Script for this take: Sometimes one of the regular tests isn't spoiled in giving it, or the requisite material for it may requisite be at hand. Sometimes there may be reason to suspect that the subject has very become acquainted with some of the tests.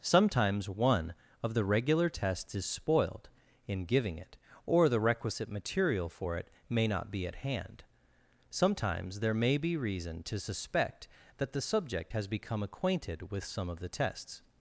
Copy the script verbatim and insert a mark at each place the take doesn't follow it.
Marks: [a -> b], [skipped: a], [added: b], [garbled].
Sometimes one of the regular tests [isn't -> is] spoiled in giving it, or the requisite material for it may [requisite -> not] be at hand. Sometimes there may be reason to suspect that the subject has [skipped: very] become acquainted with some of the tests.